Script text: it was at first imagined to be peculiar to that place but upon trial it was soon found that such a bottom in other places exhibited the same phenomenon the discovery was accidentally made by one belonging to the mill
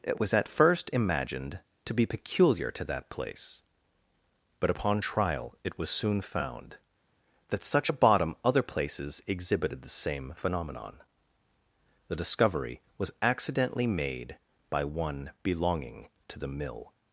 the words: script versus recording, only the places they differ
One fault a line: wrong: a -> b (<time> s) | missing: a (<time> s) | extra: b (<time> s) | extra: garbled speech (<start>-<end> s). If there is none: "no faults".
missing: in (8.3 s)